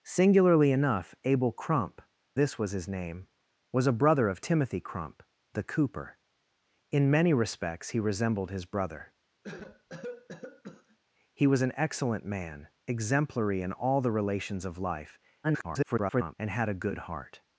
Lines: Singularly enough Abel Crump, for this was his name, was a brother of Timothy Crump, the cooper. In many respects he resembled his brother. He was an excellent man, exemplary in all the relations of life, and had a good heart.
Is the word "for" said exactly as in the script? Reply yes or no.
no